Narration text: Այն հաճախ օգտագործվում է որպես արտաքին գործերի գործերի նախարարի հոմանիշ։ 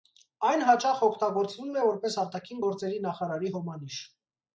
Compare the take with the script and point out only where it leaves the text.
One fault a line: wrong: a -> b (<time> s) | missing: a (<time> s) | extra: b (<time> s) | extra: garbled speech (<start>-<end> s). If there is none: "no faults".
missing: գործերի (3.0 s)